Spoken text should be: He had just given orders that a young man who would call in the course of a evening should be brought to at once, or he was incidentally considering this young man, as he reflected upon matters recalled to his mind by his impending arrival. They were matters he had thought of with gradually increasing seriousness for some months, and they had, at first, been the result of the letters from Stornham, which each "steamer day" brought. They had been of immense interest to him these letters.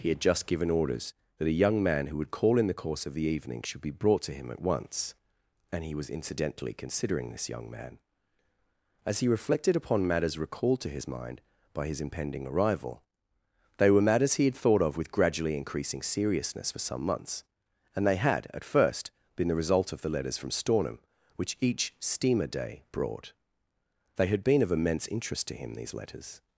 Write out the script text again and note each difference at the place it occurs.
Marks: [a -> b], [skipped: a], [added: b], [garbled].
He had just given orders that a young man who would call in the course of [a -> the] evening should be brought to [added: him] at once, [or -> and] he was incidentally considering this young man, as he reflected upon matters recalled to his mind by his impending arrival. They were matters he had thought of with gradually increasing seriousness for some months, and they had, at first, been the result of the letters from Stornham, which each "steamer day" brought. They had been of immense interest to him these letters.